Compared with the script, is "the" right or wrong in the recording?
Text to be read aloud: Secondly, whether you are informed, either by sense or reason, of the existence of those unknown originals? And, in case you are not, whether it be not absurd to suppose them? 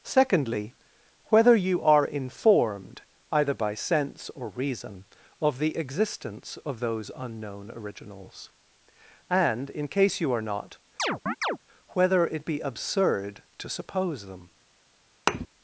right